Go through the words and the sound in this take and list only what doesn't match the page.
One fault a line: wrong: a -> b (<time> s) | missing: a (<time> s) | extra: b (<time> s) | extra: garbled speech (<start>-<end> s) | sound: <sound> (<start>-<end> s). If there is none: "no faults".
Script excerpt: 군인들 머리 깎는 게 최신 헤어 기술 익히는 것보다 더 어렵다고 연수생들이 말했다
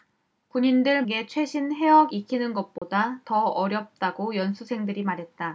missing: 머리 깎는 (1.1 s)
missing: 기술 (2.1 s)
sound: dropout (2.8-2.8 s)